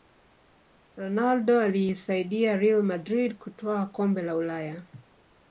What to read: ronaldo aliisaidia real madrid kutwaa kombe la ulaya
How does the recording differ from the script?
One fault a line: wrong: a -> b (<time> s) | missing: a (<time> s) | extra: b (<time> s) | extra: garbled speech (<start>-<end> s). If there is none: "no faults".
no faults